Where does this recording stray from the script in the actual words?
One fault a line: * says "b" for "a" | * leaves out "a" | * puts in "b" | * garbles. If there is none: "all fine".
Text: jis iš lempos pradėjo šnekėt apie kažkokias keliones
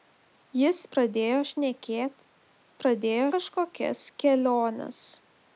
* leaves out "iš lempos"
* says "pradėjo" for "apie"